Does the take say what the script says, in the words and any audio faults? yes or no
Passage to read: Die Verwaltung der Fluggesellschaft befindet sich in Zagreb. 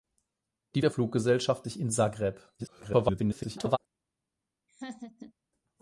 no